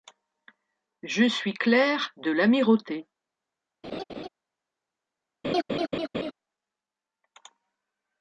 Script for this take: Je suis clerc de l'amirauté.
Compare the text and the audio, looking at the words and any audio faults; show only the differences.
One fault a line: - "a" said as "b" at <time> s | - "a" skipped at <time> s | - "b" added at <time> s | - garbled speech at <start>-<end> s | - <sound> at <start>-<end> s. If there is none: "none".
- laugh at 3.8-4.3 s
- laugh at 5.4-6.3 s